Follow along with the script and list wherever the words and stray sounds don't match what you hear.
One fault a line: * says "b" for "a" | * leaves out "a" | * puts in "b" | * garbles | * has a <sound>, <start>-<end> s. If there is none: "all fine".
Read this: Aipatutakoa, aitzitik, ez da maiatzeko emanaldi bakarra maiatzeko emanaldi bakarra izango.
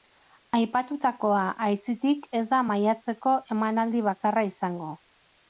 * leaves out "maiatzeko emanaldi bakarra"